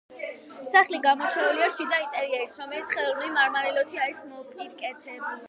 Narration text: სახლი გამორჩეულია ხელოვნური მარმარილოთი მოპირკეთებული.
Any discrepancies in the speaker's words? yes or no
yes